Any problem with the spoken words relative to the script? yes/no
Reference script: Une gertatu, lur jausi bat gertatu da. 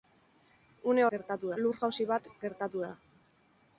no